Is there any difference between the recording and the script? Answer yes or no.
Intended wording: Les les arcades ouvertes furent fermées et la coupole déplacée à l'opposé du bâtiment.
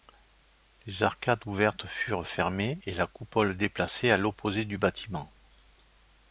yes